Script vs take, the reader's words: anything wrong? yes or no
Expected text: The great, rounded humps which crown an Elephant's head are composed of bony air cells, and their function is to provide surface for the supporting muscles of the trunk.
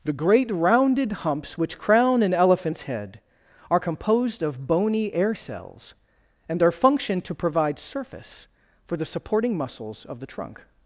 yes